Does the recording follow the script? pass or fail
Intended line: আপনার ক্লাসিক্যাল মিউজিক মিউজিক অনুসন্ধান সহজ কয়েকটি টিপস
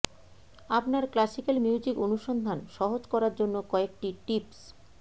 fail